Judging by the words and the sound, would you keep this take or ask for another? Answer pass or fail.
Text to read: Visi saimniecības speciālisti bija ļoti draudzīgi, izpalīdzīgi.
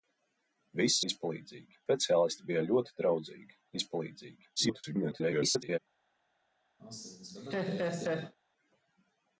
fail